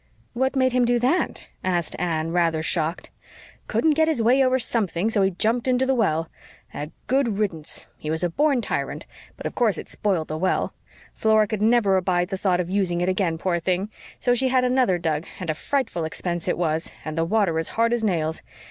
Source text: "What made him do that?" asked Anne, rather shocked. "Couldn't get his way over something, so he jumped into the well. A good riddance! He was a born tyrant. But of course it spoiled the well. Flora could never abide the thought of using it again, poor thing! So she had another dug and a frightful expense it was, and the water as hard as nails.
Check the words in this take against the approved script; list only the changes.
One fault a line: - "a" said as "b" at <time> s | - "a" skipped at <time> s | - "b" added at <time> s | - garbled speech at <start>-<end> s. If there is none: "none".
none